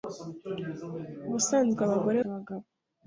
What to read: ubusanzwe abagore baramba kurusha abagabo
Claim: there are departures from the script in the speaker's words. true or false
true